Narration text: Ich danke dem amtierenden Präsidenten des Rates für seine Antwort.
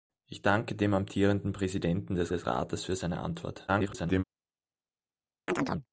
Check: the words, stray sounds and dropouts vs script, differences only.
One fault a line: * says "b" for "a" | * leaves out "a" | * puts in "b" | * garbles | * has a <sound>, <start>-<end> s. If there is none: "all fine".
* puts in "des"
* garbles
* has a chirp, 5.5-5.9 s